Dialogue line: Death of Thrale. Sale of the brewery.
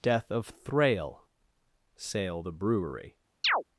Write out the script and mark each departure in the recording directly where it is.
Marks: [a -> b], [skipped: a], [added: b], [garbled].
Death of Thrale. Sale [skipped: of] the brewery.